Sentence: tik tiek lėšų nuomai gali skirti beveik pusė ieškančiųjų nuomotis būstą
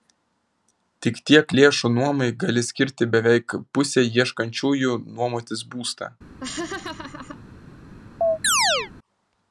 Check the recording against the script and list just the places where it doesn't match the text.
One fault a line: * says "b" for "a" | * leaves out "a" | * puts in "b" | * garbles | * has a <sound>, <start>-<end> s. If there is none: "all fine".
* has a laugh, 6.4-7.4 s
* has a chirp, 8.2-8.9 s